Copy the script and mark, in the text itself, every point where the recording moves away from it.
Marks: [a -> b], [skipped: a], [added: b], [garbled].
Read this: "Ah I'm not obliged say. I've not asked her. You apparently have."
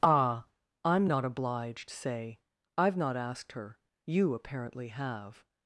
"Ah I'm not obliged say. I've not asked her. You apparently have."